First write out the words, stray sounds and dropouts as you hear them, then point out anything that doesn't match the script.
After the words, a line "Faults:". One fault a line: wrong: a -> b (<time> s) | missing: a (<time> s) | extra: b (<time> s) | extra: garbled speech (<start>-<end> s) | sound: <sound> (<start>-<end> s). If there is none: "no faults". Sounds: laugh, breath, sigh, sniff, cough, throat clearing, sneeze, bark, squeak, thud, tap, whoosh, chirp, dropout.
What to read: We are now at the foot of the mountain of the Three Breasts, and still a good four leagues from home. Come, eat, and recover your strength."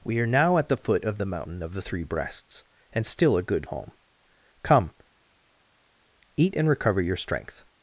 We are now at the foot of the mountain of the Three Breasts, and still a good home. Come, eat, and recover your strength."
Faults:
missing: four leagues from (3.7 s)